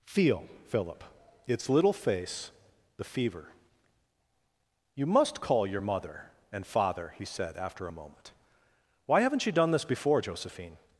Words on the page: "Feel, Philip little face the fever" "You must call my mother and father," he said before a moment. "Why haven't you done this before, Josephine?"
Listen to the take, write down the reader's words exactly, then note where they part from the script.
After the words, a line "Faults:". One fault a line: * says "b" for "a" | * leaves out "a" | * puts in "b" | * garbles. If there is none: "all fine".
"Feel, Philip its little face the fever" "You must call your mother and father," he said after a moment. "Why haven't you done this before, Josephine?"
Faults:
* puts in "its"
* says "your" for "my"
* says "after" for "before"